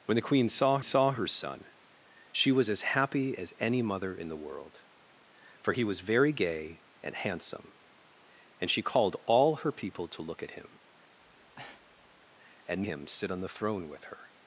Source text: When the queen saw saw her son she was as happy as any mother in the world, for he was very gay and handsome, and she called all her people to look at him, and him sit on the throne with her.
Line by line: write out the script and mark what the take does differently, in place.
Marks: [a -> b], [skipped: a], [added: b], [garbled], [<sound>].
When the queen saw saw her son she was as happy as any mother in the world, for he was very gay and handsome, and she called all her people to look at him, [breath] and him sit on the throne with her.